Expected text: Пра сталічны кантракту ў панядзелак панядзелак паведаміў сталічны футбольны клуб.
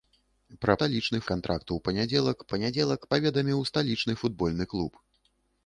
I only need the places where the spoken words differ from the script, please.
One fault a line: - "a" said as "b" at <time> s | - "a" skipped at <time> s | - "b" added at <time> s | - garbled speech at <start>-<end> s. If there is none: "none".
none